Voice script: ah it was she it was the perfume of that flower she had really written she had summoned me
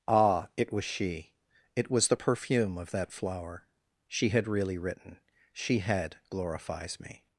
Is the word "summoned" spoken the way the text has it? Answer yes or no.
no